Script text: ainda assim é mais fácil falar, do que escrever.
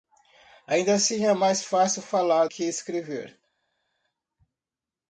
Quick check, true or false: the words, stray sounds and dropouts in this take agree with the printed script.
false